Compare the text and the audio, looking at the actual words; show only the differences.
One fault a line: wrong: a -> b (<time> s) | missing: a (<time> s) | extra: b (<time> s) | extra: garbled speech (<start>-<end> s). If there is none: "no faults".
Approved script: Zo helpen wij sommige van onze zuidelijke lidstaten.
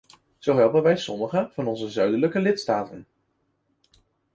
no faults